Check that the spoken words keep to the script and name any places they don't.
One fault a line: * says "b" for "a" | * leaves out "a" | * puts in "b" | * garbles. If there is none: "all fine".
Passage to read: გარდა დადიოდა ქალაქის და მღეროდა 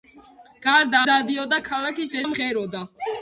all fine